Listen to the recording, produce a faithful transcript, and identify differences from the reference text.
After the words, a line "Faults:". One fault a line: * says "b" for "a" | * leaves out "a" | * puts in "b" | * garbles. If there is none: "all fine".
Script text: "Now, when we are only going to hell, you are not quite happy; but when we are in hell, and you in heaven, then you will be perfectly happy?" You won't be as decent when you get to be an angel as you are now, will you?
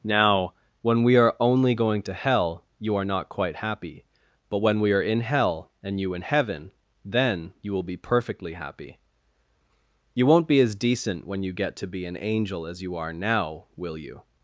"Now, when we are only going to hell, you are not quite happy; but when we are in hell, and you in heaven, then you will be perfectly happy?" You won't be as decent when you get to be an angel as you are now, will you?
Faults:
all fine